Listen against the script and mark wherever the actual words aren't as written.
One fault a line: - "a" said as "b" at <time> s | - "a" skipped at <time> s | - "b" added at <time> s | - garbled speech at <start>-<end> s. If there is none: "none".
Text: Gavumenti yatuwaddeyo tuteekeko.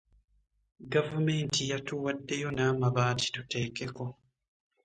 - "n'amabaati" added at 2.5 s